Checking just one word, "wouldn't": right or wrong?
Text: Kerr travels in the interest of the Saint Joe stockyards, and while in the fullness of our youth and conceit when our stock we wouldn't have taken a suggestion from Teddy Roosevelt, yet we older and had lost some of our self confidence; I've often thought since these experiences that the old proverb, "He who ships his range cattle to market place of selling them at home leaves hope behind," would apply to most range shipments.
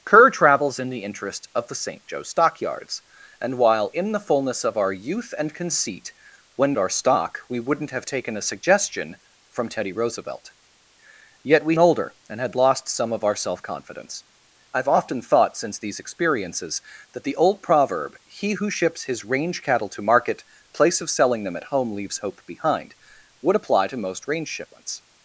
right